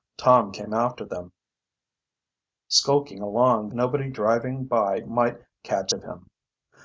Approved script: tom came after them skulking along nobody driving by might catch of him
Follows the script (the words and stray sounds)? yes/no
yes